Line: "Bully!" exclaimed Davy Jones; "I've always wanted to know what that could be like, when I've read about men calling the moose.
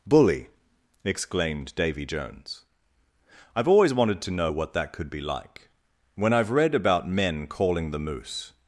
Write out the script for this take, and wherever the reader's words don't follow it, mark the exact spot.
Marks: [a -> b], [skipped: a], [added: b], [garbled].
"Bully!" exclaimed Davy Jones; "I've always wanted to know what that could be like, when I've read about men calling the moose.